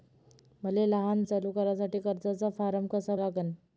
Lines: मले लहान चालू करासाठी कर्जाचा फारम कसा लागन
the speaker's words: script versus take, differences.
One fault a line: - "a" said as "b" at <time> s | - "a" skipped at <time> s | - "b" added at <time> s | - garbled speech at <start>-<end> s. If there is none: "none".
none